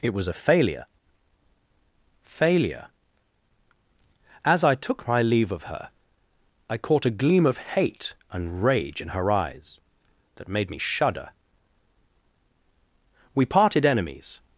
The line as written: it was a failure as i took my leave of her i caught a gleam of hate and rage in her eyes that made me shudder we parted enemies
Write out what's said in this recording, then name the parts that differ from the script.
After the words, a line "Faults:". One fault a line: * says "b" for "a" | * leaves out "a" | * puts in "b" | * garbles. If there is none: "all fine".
it was a failure failure as i took my leave of her i caught a gleam of hate and rage in her eyes that made me shudder we parted enemies
Faults:
* puts in "failure"